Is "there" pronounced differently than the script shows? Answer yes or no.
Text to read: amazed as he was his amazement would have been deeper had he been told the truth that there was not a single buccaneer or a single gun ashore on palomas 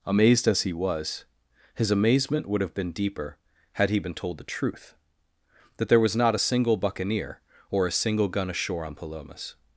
no